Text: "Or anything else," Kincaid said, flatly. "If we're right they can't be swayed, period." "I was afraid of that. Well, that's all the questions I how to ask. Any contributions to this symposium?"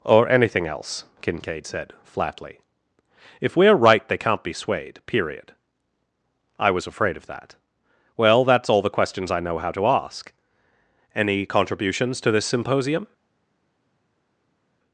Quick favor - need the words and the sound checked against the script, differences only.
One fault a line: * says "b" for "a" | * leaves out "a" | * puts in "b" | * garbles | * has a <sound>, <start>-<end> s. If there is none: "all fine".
* puts in "know"